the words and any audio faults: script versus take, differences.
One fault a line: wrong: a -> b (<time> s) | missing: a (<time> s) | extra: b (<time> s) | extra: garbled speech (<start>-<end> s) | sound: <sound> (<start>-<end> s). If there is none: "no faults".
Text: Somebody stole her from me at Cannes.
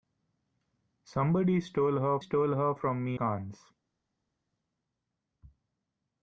extra: stole her (2.2 s)
missing: at (3.2 s)